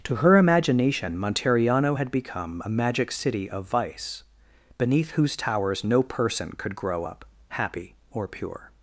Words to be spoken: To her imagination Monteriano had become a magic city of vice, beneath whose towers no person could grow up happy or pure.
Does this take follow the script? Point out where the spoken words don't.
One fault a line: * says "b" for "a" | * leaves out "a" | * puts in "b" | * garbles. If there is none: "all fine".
all fine